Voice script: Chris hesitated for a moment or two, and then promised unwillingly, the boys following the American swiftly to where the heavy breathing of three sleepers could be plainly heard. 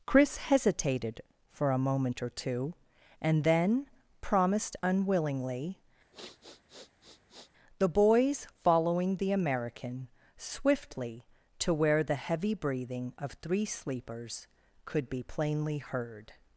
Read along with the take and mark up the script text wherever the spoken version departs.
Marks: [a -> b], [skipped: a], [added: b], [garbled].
Chris hesitated for a moment or two, and then promised unwillingly, the boys following the American swiftly to where the heavy breathing of three sleepers could be plainly heard.